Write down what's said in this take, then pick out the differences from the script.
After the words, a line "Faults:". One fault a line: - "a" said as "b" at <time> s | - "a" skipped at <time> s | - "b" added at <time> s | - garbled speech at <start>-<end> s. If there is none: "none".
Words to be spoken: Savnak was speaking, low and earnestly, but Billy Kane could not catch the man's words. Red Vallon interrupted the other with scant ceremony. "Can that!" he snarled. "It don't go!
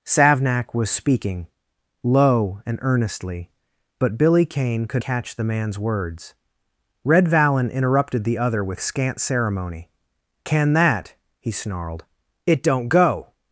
Savnak was speaking, low and earnestly, but Billy Kane could catch the man's words. Red Vallon interrupted the other with scant ceremony. "Can that!" he snarled. "It don't go!
Faults:
- "not" skipped at 5.0 s